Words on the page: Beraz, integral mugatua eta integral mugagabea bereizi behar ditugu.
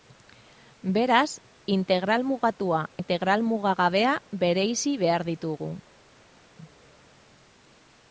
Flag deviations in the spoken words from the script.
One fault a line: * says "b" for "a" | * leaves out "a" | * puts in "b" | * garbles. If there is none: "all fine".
* leaves out "eta"